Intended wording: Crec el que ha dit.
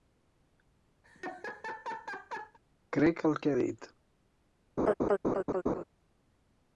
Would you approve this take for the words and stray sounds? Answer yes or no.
no